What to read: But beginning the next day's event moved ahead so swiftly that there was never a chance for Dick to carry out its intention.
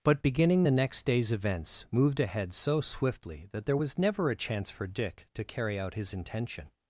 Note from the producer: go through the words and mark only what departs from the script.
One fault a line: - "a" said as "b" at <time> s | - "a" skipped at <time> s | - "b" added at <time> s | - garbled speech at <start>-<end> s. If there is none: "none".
- "event" said as "events" at 1.3 s
- "its" said as "his" at 5.9 s